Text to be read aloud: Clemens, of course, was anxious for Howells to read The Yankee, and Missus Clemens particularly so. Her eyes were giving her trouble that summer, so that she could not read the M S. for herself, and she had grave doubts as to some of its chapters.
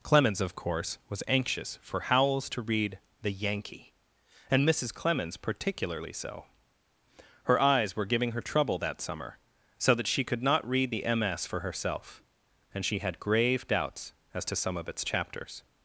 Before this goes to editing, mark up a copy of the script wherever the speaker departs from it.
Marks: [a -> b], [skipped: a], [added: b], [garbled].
Clemens, of course, was anxious for Howells to read The Yankee, and Missus Clemens particularly so. Her eyes were giving her trouble that summer, so that she could not read the M S. for herself, and she had grave doubts as to some of its chapters.